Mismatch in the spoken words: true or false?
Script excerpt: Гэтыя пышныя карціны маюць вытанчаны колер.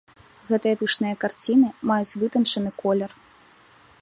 false